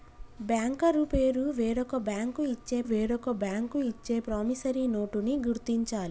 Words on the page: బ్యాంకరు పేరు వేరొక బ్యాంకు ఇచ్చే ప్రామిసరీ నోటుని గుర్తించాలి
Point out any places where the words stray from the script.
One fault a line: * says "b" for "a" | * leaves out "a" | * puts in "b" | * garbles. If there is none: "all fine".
* puts in "వేరొక బ్యాంకు ఇచ్చే"